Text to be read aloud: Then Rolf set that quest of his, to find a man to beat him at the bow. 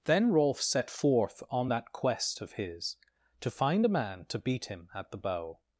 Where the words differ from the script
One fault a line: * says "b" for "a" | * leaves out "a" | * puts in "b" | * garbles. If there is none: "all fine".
* puts in "forth on"